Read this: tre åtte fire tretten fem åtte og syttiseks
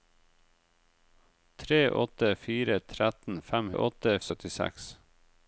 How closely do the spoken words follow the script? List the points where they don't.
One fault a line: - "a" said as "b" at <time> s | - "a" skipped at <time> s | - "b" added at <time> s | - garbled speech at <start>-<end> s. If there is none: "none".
none